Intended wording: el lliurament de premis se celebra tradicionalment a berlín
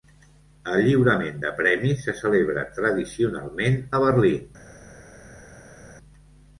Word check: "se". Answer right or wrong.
right